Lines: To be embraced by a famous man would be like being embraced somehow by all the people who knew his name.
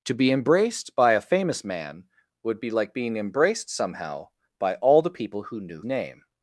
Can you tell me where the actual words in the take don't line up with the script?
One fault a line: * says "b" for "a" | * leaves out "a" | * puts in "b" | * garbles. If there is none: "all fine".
* leaves out "his"